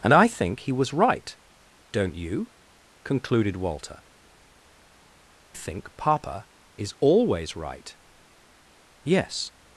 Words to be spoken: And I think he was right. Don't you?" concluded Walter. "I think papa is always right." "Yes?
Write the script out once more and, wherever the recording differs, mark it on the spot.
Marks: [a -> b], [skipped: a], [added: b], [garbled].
And I think he was right. Don't you?" concluded Walter. [skipped: "I] think papa is always right." "Yes?